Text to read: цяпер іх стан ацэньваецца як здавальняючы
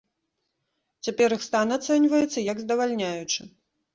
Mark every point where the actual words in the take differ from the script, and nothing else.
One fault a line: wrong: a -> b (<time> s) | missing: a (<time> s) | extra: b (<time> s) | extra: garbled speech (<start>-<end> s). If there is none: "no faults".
no faults